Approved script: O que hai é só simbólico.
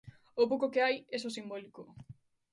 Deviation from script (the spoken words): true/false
true